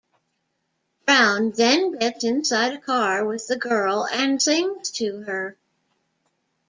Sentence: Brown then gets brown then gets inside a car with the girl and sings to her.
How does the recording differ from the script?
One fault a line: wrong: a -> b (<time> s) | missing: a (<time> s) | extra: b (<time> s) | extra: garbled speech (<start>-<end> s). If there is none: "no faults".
missing: brown then gets (2.2 s)